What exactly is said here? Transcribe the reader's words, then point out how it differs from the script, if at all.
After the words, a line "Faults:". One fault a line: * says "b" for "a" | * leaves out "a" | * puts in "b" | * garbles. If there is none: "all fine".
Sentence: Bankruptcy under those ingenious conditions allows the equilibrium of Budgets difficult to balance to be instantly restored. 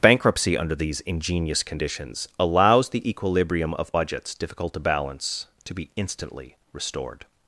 Bankruptcy under these ingenious conditions allows the equilibrium of Budgets difficult to balance to be instantly restored.
Faults:
* says "these" for "those"